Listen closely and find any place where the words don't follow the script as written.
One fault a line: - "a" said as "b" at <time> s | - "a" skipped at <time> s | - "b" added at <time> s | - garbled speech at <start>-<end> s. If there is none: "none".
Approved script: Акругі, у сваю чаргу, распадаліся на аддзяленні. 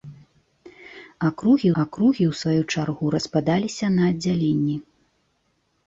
- "акругі" added at 1.8 s